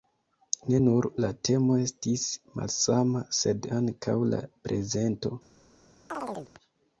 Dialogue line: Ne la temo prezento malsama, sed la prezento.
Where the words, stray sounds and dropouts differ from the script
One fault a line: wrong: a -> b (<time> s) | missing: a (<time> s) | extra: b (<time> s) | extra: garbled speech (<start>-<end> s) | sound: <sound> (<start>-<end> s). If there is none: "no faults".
extra: nur (0.8 s)
wrong: prezento -> estis (1.8 s)
extra: ankaŭ (3.8 s)
sound: chirp (6.1-6.5 s)